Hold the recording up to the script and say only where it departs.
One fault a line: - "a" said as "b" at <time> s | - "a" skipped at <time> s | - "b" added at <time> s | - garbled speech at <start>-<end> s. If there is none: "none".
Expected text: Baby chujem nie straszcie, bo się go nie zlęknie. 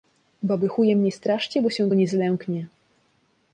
none